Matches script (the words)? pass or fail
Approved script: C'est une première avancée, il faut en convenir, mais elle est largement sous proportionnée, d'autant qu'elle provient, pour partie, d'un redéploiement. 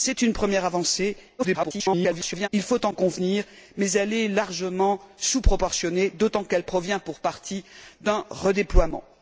fail